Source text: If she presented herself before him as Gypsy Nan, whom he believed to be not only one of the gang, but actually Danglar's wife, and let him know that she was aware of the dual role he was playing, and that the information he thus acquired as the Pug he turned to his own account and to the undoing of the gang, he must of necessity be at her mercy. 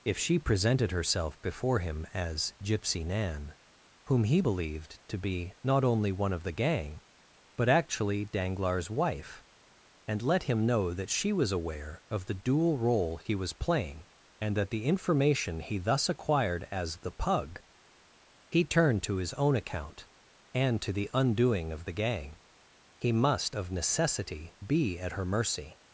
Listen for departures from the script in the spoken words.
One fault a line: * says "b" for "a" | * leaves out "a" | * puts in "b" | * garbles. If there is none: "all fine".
all fine